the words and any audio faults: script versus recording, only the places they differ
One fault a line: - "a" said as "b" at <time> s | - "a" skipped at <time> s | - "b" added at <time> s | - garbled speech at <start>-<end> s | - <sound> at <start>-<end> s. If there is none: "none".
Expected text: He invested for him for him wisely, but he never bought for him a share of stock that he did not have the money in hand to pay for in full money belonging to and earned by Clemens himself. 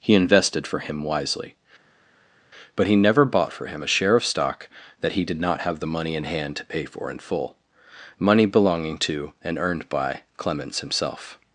- "for him" skipped at 1.0 s